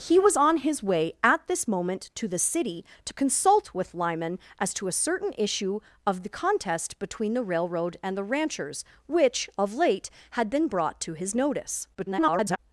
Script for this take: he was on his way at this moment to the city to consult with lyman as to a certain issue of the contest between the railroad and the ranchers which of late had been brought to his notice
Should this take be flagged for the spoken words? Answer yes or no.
yes